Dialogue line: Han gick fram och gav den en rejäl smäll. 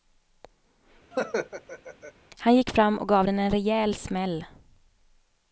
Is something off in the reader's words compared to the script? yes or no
no